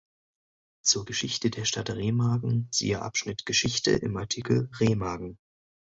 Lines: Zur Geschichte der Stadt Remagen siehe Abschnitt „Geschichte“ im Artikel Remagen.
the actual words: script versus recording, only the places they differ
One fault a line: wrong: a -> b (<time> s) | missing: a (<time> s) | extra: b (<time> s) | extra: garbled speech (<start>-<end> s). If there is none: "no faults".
no faults